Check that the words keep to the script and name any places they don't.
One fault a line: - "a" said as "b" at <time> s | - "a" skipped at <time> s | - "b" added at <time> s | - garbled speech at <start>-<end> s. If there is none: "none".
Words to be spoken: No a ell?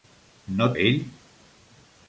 none